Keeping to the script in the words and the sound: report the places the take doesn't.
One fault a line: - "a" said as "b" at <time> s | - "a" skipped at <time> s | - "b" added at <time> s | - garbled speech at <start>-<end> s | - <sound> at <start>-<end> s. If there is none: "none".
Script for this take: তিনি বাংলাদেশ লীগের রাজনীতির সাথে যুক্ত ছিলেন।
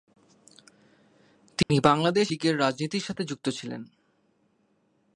- dropout at 1.6-1.7 s